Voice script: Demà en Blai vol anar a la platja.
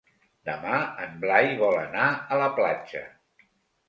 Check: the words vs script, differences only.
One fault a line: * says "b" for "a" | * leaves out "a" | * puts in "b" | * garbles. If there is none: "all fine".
all fine